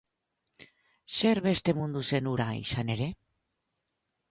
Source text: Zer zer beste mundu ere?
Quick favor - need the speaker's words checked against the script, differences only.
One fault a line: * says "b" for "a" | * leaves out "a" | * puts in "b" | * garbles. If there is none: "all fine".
* leaves out "zer"
* puts in "zen hura izan"